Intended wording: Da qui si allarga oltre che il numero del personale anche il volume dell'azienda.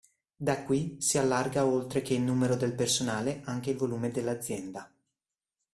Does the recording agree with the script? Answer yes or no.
yes